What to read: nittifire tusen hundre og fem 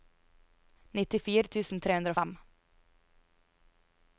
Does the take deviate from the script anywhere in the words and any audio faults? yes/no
yes